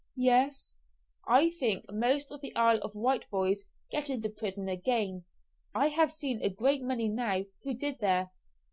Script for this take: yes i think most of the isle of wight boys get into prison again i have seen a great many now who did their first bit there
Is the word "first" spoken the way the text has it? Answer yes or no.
no